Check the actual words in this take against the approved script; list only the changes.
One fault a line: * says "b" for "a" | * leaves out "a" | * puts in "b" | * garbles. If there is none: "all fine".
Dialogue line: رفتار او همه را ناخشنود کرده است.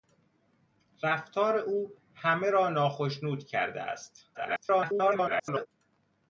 * garbles